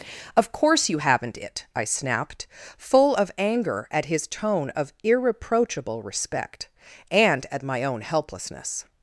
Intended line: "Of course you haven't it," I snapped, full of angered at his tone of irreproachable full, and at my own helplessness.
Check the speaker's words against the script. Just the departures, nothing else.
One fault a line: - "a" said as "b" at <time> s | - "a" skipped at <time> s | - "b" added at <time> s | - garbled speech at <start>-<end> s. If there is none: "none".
- "angered" said as "anger" at 3.4 s
- "full" said as "respect" at 6.0 s